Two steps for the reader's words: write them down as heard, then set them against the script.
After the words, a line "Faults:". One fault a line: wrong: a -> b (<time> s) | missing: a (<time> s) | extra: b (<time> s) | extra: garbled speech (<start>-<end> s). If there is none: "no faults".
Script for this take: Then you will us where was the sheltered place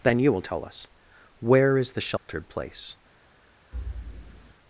Then you will tell us where is the sheltered place
Faults:
extra: tell (0.4 s)
wrong: was -> is (1.8 s)